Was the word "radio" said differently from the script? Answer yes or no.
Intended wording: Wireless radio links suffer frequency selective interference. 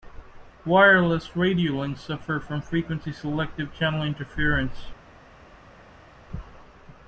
no